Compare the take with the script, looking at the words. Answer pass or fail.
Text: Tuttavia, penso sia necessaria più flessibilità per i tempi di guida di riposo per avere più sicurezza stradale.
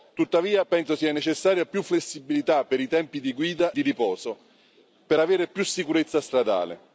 pass